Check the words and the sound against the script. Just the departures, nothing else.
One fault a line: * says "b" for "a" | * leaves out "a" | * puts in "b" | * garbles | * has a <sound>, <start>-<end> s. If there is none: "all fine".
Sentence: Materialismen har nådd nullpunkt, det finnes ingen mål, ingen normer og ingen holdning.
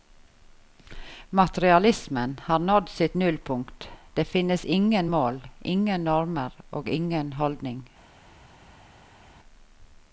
* puts in "sitt"